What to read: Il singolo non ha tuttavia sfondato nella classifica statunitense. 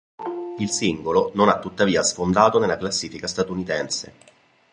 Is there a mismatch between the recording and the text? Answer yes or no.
no